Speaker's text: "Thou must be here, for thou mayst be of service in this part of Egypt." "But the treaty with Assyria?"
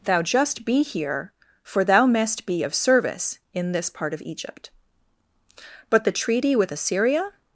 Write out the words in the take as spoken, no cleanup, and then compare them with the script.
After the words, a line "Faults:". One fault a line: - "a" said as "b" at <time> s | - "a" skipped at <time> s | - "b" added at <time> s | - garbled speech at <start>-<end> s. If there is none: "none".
"Thou just be here, for thou mayst be of service in this part of Egypt." "But the treaty with Assyria?"
Faults:
- "must" said as "just" at 0.2 s